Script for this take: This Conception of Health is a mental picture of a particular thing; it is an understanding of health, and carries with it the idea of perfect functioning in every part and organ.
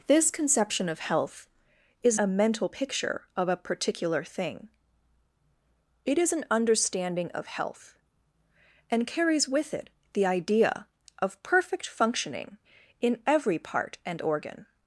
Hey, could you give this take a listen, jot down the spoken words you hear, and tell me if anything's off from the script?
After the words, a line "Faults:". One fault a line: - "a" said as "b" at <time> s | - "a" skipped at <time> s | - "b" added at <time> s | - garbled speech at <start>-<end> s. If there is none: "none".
This Conception of Health is a mental picture of a particular thing; it is an understanding of health, and carries with it the idea of perfect functioning in every part and organ.
Faults:
none